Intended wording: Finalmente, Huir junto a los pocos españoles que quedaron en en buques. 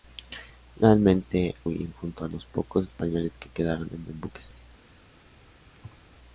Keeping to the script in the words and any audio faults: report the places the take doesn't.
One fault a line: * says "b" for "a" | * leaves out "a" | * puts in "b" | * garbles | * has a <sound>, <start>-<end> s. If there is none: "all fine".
* has a thud, 5.7-6.0 s